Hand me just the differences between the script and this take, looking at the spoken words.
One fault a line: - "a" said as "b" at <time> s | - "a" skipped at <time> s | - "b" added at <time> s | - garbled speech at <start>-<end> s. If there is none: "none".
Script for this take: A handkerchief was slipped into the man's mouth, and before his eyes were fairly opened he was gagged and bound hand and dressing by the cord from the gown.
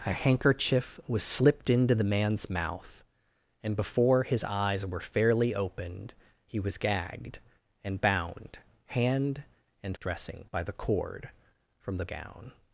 none